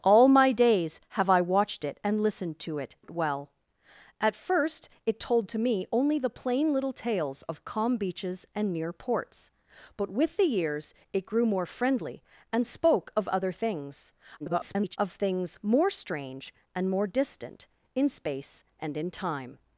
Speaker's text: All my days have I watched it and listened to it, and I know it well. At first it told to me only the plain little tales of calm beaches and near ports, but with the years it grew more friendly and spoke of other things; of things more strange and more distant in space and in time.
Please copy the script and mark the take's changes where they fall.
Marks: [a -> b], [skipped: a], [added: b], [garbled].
All my days have I watched it and listened to it, [skipped: and I know] it well. At first it told to me only the plain little tales of calm beaches and near ports, but with the years it grew more friendly and spoke of other things; [garbled] of things more strange and more distant in space and in time.